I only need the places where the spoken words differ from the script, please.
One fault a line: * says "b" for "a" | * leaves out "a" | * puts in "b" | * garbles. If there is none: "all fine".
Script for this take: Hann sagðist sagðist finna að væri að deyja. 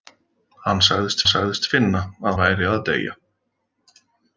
all fine